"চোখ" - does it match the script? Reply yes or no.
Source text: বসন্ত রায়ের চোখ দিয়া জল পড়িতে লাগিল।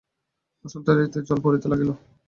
no